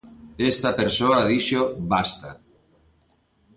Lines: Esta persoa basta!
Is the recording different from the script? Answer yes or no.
yes